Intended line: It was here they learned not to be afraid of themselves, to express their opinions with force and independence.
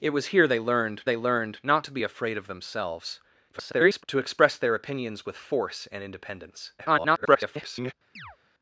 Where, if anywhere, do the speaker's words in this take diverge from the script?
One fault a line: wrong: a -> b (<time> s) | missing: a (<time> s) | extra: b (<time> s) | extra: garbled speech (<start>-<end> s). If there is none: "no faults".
extra: they learned (1.0 s)
extra: garbled speech (3.5-4.0 s)
extra: garbled speech (6.8-7.9 s)